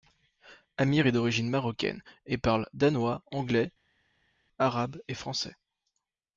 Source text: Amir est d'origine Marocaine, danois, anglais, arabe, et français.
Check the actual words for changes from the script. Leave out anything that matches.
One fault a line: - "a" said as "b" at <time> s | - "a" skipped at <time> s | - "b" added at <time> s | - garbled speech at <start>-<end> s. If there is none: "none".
- "et parle" added at 2.2 s